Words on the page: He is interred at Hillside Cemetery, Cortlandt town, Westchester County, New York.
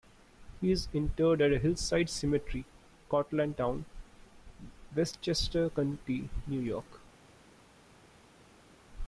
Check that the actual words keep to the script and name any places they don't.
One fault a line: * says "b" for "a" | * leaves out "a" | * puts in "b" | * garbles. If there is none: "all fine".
all fine